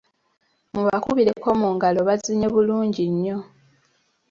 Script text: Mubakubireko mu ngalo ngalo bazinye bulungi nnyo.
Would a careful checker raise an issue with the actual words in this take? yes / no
yes